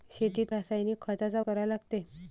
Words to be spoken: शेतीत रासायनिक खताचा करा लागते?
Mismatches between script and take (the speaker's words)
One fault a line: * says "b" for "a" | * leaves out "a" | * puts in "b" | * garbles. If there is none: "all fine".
all fine